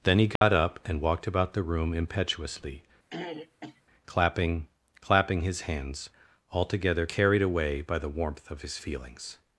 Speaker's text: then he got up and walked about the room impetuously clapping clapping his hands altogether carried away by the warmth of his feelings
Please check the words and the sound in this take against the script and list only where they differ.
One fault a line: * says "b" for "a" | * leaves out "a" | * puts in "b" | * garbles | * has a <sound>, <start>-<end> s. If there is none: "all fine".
* has a dropout, 0.4-0.4 s
* has a throat clearing, 3.1-3.8 s